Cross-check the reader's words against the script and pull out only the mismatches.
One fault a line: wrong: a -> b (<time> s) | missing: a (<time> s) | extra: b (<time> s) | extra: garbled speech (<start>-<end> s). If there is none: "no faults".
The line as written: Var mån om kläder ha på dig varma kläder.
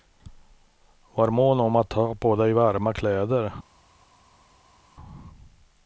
wrong: kläder -> att (1.8 s)